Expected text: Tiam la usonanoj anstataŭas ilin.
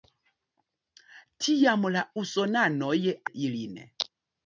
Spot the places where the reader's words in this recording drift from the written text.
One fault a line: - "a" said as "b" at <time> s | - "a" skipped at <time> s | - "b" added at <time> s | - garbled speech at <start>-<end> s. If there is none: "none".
- "anstataŭas" skipped at 3.0 s